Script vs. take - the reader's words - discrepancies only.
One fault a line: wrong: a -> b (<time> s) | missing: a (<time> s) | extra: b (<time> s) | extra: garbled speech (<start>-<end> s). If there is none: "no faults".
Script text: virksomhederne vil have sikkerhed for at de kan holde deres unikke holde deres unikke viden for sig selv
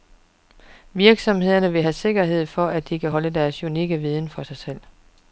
missing: holde deres unikke (4.0 s)